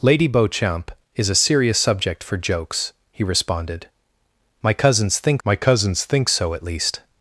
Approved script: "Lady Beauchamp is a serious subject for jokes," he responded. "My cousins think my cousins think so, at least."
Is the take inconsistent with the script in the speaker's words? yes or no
no